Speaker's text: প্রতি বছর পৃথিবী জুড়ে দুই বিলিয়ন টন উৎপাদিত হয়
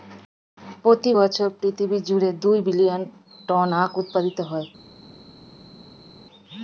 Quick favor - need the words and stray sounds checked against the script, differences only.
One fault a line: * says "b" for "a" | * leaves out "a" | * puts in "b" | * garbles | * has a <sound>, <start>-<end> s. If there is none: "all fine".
* puts in "আখ"